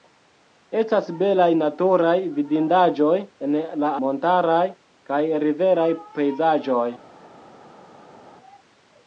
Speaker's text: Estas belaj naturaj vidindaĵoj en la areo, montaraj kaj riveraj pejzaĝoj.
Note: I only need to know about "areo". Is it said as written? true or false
false